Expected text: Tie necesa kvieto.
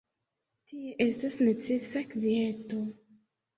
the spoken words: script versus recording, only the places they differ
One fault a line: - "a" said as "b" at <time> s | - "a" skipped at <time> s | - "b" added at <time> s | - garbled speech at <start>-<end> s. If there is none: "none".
- "estas" added at 1.1 s